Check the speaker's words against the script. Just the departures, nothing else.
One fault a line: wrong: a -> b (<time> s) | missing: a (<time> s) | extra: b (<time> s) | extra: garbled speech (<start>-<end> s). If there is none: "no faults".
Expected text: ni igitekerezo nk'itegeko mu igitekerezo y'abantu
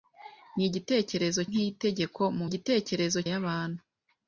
no faults